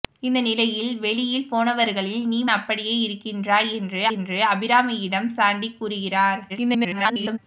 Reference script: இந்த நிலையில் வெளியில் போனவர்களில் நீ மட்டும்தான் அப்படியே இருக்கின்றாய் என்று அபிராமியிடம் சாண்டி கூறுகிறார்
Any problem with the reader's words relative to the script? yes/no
yes